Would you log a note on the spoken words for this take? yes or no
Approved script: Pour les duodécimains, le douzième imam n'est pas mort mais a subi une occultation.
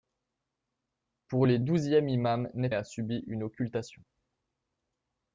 yes